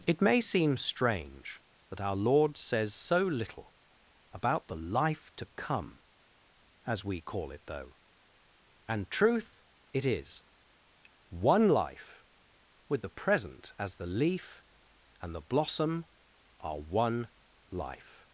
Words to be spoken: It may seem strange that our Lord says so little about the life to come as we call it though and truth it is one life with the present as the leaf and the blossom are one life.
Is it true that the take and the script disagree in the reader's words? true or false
false